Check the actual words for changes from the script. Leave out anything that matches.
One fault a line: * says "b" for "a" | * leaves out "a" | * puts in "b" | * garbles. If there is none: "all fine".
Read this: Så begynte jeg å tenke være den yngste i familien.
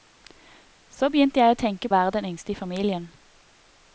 all fine